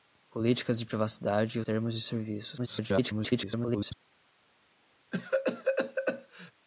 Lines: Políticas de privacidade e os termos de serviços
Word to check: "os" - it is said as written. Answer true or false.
false